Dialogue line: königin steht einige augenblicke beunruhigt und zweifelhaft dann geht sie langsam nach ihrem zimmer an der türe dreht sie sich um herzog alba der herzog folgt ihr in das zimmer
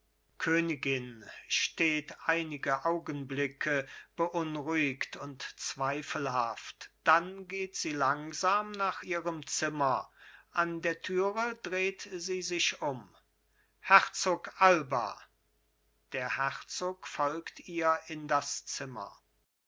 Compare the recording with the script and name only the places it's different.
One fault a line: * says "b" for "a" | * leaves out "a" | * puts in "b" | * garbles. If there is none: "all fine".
all fine